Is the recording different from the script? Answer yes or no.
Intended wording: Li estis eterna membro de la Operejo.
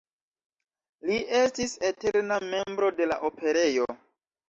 no